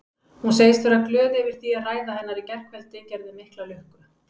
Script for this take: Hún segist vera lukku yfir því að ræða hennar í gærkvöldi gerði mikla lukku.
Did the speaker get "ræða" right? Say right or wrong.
right